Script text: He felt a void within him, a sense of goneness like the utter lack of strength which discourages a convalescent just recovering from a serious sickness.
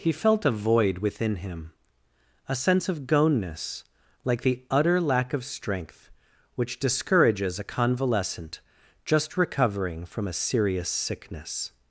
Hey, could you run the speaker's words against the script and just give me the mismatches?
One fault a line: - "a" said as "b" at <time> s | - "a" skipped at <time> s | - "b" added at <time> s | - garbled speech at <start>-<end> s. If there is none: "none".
none